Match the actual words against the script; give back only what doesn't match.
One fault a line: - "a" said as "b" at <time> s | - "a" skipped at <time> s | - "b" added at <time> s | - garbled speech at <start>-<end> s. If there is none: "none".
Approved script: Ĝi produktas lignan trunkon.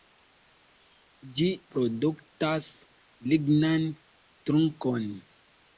none